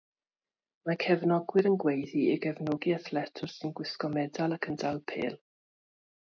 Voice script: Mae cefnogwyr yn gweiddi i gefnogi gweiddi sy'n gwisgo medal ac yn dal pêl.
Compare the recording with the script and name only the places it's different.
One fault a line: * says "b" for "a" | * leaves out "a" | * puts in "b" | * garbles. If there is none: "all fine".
* says "athletwr" for "gweiddi"